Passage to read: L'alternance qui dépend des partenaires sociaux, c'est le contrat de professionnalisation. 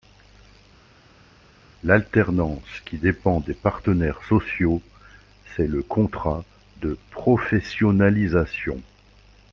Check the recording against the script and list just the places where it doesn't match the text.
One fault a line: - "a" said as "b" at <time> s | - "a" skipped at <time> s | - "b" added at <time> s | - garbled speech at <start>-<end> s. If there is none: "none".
none